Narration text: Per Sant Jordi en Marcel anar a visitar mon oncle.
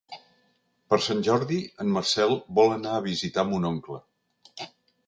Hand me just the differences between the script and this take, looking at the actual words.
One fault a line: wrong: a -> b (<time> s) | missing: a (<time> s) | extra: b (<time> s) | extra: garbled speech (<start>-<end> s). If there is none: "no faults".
extra: vol (2.6 s)